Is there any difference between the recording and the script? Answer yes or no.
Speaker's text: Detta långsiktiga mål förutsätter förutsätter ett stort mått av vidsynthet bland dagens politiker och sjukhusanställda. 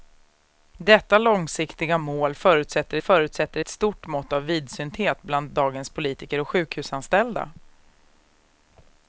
no